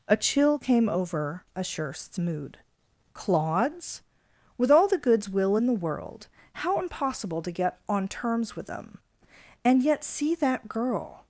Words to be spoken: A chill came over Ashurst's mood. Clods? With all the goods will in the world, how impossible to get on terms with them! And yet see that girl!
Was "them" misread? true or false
false